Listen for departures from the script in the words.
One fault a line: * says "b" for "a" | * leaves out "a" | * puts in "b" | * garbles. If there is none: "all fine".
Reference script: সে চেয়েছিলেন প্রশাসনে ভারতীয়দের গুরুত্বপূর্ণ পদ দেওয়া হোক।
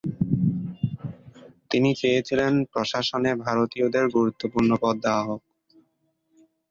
* says "তিনি" for "সে"